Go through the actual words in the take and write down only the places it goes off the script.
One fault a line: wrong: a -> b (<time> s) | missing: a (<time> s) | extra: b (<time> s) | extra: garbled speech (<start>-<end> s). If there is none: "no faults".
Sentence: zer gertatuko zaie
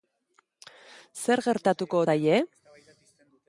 no faults